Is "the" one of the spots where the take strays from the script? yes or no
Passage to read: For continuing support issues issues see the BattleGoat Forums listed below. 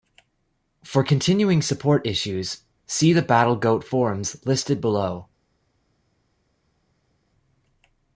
no